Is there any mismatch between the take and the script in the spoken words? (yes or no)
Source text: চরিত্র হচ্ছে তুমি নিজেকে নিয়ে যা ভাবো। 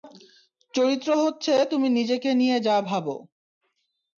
no